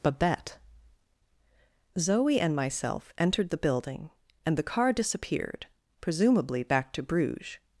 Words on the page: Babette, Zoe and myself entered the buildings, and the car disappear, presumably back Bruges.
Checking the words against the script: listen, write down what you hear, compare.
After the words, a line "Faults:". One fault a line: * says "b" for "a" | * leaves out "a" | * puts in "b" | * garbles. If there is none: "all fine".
Babette, Zoe and myself entered the building, and the car disappeared, presumably back to Bruges.
Faults:
* says "building" for "buildings"
* says "disappeared" for "disappear"
* puts in "to"